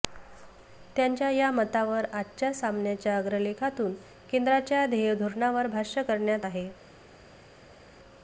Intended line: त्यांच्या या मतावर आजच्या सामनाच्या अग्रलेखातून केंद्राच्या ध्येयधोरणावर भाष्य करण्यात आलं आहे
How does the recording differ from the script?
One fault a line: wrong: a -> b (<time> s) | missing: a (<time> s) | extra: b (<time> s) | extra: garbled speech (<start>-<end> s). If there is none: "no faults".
missing: आलं (6.5 s)